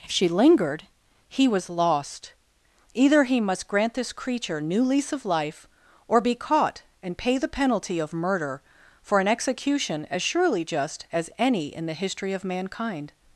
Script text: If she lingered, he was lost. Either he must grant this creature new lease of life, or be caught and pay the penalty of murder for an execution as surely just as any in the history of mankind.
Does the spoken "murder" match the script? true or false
true